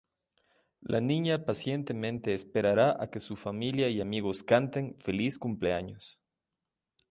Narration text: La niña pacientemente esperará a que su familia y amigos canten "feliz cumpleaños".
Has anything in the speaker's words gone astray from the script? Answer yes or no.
no